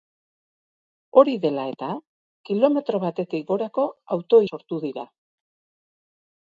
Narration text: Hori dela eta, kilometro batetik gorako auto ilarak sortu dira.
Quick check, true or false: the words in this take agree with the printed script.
false